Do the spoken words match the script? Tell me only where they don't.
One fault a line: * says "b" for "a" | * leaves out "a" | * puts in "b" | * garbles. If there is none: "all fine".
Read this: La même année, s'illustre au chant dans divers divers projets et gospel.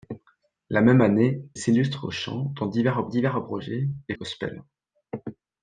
all fine